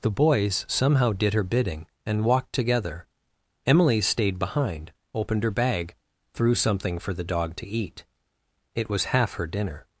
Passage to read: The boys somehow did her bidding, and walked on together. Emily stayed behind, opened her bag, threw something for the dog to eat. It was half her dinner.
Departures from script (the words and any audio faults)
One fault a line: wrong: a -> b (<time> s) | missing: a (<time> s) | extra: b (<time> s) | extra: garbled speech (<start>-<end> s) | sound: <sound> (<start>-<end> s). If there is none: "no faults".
missing: on (2.5 s)